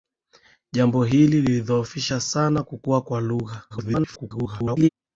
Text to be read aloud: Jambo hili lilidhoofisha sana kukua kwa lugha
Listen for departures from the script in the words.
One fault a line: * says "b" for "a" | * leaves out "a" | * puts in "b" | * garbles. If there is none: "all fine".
* garbles